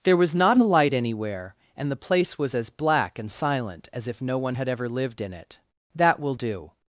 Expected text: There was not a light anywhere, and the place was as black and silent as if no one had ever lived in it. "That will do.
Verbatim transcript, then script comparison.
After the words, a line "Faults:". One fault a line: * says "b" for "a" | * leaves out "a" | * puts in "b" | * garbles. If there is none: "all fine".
There was not a light anywhere, and the place was as black and silent as if no one had ever lived in it. "That will do.
Faults:
all fine